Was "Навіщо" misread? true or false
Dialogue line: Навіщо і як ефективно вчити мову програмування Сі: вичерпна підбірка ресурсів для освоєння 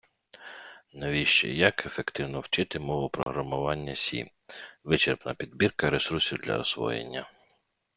false